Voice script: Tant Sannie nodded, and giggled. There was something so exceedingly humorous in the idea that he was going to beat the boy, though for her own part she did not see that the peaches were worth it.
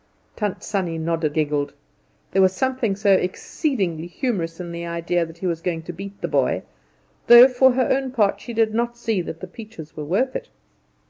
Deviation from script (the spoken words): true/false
true